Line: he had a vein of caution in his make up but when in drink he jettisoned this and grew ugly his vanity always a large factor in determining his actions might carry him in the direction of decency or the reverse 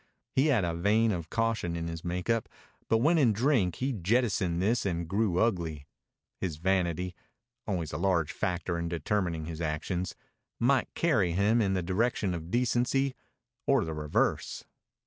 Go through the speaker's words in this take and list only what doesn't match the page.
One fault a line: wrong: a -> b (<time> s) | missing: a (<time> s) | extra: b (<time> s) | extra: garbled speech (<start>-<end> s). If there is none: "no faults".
no faults